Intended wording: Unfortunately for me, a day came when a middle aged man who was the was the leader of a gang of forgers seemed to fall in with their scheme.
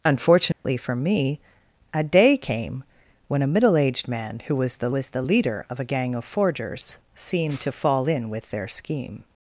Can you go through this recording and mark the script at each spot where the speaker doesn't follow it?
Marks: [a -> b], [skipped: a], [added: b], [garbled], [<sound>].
Unfortunately [dropout] for me, a day came when a middle aged man who was the was the leader of a gang of forgers seemed to fall in with their scheme.